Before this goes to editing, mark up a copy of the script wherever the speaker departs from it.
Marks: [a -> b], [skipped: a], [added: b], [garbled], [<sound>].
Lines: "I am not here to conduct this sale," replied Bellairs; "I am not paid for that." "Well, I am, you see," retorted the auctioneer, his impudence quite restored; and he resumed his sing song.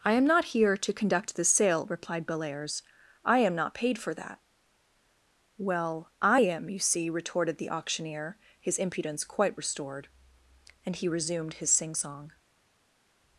"I am not here to conduct [this -> the] sale," replied Bellairs; "I am not paid for that." "Well, I am, you see," retorted the auctioneer, his impudence quite restored; and he resumed his sing song.